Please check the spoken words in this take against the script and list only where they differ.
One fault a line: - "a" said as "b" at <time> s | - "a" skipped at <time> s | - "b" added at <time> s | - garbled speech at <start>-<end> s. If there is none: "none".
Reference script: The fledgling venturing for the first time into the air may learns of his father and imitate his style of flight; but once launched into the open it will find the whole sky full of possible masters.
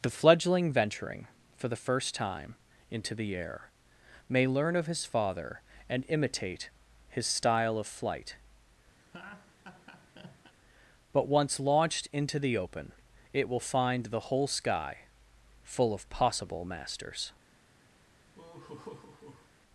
- "learns" said as "learn" at 4.5 s